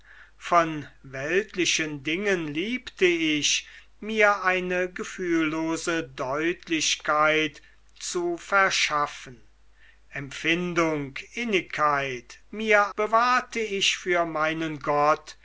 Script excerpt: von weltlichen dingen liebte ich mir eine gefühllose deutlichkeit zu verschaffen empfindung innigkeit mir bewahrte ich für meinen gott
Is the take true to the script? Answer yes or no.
yes